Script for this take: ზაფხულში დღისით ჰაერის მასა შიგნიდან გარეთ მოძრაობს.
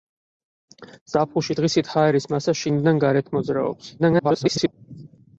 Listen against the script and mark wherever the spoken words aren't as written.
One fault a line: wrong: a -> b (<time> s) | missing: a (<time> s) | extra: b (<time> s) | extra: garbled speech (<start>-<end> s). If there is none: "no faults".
extra: garbled speech (4.0-4.7 s)